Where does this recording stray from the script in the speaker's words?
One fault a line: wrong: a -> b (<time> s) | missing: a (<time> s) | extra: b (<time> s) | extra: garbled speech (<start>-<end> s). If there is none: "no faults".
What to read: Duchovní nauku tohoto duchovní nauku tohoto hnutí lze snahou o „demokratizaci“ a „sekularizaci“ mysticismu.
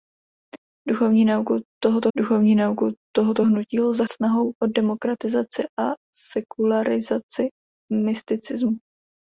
no faults